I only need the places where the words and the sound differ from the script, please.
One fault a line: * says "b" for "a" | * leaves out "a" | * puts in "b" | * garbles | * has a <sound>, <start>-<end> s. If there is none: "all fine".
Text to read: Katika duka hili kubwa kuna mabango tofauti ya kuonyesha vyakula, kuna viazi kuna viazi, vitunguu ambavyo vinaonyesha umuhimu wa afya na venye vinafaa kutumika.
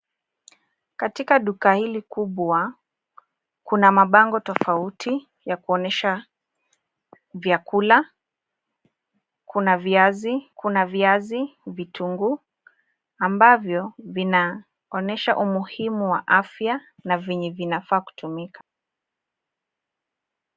all fine